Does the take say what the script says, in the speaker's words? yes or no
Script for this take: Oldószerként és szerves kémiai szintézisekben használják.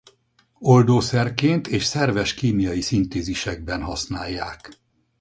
yes